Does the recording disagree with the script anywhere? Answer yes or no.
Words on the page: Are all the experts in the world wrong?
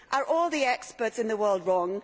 no